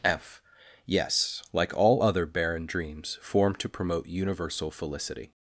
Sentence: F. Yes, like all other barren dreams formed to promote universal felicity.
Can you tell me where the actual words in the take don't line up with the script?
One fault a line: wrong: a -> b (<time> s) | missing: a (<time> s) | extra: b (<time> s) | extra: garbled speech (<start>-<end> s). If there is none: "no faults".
no faults